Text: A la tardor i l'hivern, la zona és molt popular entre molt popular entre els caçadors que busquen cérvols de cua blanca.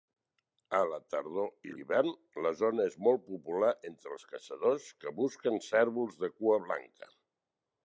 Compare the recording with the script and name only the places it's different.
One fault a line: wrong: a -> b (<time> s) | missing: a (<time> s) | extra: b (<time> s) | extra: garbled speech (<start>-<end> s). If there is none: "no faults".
missing: molt popular entre (4.1 s)